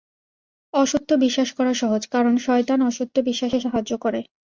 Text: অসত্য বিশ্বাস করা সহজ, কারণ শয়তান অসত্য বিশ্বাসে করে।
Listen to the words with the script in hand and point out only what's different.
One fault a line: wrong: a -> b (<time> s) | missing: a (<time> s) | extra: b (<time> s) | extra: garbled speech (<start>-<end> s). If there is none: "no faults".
extra: সাহায্য (3.6 s)